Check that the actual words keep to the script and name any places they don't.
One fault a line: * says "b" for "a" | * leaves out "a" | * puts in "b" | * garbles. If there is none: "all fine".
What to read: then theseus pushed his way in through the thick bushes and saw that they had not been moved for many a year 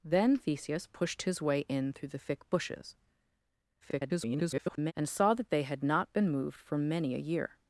* garbles